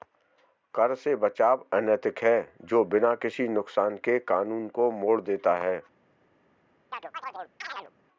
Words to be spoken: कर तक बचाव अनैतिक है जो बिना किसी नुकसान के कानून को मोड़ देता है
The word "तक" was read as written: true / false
false